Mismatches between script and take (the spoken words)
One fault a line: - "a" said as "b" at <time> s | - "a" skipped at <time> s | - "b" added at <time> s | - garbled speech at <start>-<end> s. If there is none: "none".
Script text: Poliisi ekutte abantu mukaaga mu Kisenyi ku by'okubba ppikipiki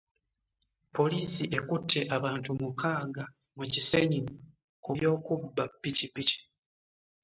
none